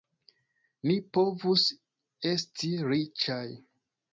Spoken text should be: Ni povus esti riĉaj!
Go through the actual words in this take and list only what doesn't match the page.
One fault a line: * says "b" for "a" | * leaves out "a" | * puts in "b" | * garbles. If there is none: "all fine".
all fine